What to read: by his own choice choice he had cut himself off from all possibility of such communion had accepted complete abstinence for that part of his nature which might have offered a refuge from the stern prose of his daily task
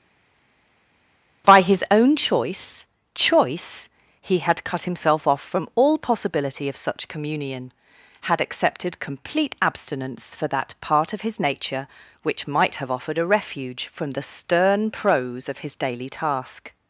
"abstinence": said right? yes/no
yes